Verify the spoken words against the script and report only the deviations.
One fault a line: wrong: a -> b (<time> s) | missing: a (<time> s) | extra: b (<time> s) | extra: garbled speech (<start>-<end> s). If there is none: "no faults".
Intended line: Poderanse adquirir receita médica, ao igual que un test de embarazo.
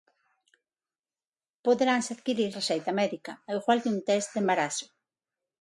no faults